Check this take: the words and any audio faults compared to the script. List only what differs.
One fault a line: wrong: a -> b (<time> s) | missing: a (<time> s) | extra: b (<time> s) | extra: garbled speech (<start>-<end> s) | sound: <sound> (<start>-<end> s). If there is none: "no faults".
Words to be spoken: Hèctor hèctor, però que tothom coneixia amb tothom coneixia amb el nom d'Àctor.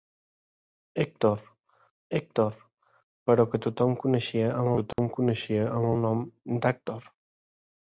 sound: dropout (4.9-5.0 s)